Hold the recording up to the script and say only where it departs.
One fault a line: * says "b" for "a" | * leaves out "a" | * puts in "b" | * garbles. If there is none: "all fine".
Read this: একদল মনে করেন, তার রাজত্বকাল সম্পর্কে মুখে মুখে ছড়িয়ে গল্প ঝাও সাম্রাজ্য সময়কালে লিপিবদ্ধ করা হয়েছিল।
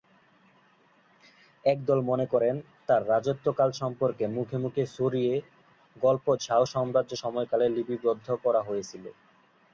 all fine